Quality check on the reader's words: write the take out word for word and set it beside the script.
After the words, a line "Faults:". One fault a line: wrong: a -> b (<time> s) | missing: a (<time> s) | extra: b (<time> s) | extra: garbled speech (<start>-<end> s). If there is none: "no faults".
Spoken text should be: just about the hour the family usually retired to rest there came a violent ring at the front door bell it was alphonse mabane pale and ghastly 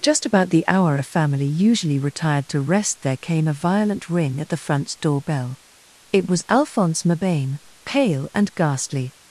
just about the hour a family usually retired to rest there came a violent ring at the front door bell it was alphonse mabane pale and ghastly
Faults:
wrong: the -> a (0.9 s)